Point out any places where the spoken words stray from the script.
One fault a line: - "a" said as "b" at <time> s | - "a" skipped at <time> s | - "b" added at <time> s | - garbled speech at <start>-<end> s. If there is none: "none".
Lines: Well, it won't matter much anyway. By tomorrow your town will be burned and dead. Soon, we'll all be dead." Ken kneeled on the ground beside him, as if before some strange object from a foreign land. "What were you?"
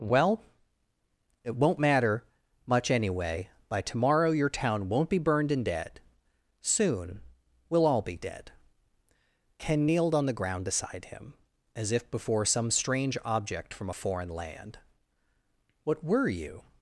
- "will" said as "won't" at 4.9 s